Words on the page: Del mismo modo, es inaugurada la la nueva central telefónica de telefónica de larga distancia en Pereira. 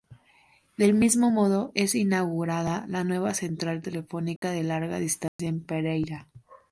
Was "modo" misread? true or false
false